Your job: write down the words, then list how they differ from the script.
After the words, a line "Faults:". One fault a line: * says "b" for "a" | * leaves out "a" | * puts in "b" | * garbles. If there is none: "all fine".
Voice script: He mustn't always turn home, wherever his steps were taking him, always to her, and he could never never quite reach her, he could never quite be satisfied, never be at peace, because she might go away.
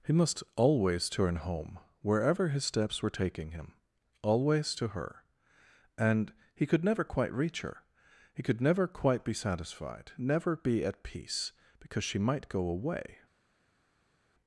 He must always turn home, wherever his steps were taking him, always to her, and he could never quite reach her, he could never quite be satisfied, never be at peace, because she might go away.
Faults:
* says "must" for "mustn't"
* leaves out "never"